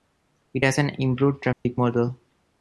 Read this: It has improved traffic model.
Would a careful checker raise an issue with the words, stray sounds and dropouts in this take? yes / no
yes